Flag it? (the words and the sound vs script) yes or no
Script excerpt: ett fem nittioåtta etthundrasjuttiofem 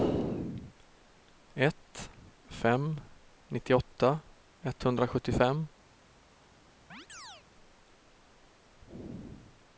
yes